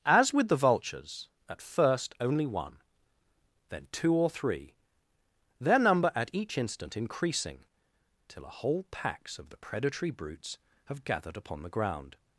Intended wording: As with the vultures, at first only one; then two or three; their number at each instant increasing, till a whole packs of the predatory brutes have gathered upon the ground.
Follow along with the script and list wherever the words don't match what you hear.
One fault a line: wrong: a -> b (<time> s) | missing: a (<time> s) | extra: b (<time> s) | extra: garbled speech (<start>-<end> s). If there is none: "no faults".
no faults